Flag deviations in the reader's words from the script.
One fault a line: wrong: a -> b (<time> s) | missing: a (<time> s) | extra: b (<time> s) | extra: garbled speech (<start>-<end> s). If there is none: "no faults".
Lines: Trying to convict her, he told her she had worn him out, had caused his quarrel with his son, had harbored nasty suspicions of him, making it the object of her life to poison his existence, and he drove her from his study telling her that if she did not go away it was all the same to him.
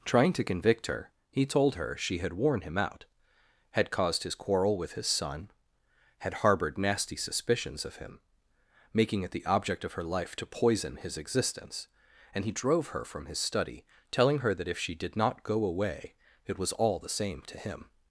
no faults